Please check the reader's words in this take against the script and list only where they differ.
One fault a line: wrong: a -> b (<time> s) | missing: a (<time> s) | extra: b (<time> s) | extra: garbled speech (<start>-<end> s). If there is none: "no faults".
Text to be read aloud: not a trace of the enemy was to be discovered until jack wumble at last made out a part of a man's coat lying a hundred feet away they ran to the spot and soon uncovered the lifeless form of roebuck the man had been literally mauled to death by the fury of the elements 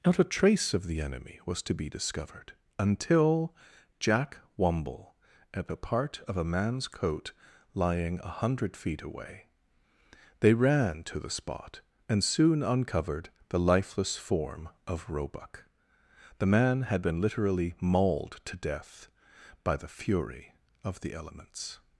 missing: last made out (5.7 s)